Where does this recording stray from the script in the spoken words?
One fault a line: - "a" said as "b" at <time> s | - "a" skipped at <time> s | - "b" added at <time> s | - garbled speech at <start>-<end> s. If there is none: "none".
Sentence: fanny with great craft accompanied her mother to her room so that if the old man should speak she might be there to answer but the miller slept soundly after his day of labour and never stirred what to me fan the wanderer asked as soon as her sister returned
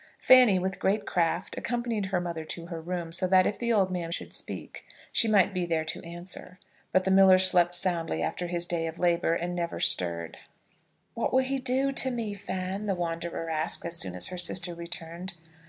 - "will he do" added at 11.3 s